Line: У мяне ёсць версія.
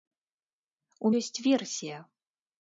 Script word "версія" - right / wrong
right